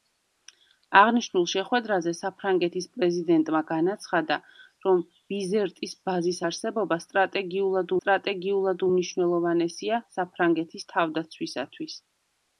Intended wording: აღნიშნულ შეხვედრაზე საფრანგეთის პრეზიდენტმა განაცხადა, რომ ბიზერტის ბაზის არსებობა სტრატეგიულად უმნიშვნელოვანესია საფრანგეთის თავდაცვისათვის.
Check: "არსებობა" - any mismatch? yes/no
no